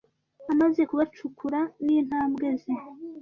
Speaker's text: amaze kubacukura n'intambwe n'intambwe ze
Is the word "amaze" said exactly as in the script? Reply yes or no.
yes